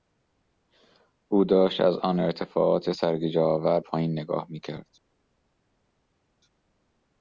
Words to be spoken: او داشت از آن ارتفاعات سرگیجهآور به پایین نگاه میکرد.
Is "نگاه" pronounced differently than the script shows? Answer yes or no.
no